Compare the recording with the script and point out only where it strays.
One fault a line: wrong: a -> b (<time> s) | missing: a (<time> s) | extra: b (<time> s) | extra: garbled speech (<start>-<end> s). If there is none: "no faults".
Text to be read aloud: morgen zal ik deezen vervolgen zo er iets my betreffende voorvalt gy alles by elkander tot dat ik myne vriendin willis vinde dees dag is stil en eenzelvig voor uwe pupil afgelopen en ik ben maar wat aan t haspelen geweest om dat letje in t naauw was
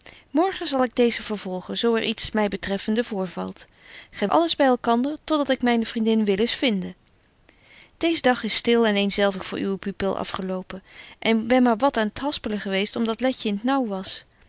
no faults